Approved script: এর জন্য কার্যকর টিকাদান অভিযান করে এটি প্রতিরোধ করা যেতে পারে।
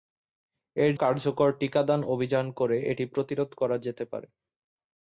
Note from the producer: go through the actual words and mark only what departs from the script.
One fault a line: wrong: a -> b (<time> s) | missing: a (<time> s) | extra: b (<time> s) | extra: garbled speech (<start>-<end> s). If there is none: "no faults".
missing: জন্য (0.9 s)